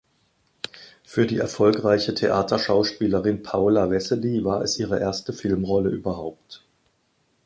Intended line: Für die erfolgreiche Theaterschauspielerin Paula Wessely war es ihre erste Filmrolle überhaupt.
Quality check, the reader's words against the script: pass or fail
pass